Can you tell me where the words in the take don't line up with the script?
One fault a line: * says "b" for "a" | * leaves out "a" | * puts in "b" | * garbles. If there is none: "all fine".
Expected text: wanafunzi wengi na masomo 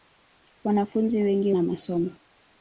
all fine